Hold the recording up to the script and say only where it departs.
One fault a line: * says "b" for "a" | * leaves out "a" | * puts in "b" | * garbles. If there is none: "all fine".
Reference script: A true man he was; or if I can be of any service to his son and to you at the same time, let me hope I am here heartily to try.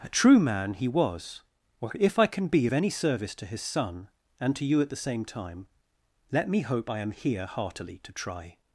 all fine